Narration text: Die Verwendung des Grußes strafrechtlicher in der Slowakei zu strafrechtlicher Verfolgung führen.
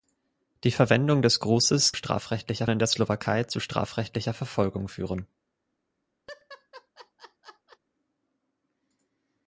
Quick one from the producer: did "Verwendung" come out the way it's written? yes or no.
yes